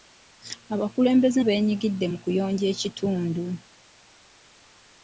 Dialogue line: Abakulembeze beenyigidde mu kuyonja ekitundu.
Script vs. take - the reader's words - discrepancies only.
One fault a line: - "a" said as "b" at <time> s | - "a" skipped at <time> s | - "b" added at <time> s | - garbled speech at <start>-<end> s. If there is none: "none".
none